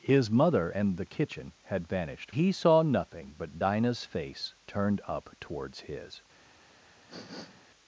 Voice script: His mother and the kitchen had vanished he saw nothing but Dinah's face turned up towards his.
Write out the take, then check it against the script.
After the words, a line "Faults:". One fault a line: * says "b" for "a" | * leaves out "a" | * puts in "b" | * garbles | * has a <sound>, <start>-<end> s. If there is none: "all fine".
His mother and the kitchen had vanished he saw nothing but Dinah's face turned up towards his.
Faults:
* has a sniff, 7.1-7.6 s